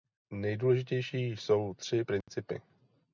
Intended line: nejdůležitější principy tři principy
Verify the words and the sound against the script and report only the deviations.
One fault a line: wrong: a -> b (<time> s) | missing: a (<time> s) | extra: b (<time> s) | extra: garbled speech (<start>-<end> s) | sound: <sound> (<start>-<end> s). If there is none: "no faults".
wrong: principy -> jsou (1.2 s)
sound: dropout (2.2-2.3 s)